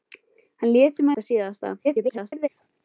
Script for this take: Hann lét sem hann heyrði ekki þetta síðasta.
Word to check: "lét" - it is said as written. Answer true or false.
true